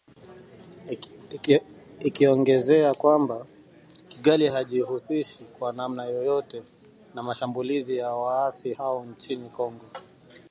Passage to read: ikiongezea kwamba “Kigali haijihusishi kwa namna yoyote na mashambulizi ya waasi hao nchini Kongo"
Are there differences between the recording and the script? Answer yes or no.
no